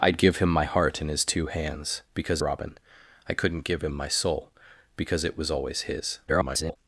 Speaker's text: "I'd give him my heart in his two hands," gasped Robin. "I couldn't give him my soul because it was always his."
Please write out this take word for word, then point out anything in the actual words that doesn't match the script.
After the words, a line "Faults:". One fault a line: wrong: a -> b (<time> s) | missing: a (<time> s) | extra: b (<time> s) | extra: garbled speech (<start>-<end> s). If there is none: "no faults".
"I'd give him my heart in his two hands," because Robin. "I couldn't give him my soul because it was always his." [garbled]
Faults:
wrong: gasped -> because (2.1 s)
extra: garbled speech (6.3-6.8 s)